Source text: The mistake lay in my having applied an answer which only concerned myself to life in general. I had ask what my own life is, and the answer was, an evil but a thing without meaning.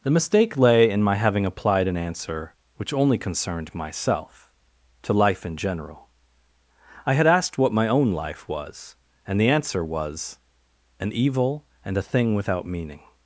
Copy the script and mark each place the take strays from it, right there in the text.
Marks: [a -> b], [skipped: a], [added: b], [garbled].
The mistake lay in my having applied an answer which only concerned myself to life in general. I had [ask -> asked] what my own life [is, -> was] and the answer was, an evil [but -> and] a thing without meaning.